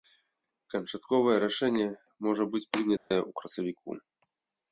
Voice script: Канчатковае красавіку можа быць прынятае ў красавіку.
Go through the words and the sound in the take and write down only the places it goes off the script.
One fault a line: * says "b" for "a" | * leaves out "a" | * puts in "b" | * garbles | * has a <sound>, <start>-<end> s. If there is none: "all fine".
* says "рашэнне" for "красавіку"
* has a dropout, 3.0-3.1 s